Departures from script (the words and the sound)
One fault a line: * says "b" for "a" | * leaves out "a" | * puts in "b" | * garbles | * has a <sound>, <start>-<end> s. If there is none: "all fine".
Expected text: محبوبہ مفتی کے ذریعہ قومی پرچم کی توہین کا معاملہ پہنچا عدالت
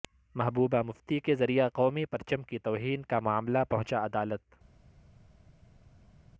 all fine